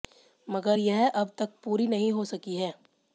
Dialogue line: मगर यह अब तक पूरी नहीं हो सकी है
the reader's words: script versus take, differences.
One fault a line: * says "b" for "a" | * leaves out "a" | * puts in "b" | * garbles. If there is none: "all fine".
all fine